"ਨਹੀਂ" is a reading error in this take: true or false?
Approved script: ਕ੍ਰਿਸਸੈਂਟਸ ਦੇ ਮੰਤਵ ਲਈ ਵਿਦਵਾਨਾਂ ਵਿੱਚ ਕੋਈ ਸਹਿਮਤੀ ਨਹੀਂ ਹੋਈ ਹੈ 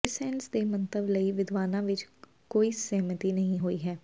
false